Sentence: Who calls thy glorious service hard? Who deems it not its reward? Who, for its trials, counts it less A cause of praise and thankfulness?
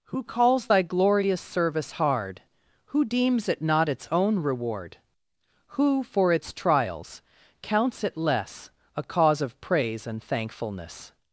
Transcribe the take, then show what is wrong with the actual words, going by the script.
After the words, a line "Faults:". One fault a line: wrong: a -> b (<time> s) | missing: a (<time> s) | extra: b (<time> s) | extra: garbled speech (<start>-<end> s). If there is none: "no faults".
Who calls thy glorious service hard? Who deems it not its own reward? Who, for its trials, counts it less A cause of praise and thankfulness?
Faults:
extra: own (4.1 s)